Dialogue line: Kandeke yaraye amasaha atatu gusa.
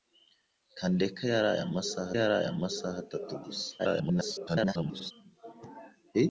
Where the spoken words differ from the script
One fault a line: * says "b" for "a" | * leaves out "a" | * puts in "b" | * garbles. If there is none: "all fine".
* puts in "yaraye amasaha"
* garbles